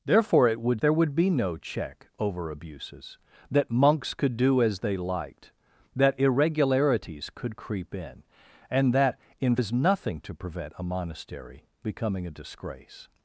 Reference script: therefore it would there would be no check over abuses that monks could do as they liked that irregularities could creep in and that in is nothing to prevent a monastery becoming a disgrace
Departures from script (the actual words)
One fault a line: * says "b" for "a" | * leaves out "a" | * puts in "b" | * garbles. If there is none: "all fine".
all fine